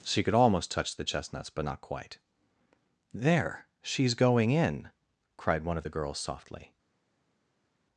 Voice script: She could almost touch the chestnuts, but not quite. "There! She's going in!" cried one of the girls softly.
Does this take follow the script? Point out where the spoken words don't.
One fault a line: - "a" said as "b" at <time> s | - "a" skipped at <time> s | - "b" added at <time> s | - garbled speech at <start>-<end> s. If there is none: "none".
none